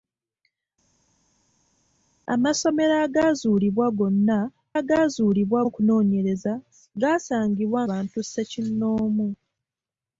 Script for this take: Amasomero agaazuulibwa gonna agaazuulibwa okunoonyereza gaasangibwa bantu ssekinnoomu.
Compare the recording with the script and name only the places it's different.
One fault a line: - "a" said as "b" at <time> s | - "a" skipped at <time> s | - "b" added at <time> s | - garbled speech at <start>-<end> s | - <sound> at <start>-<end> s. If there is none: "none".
none